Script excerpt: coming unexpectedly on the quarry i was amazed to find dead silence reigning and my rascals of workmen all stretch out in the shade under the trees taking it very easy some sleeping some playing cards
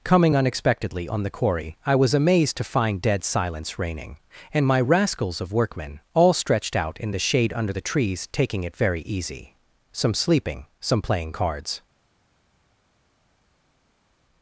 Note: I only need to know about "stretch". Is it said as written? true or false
false